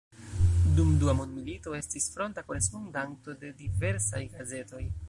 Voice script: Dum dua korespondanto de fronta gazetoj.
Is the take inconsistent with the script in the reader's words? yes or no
yes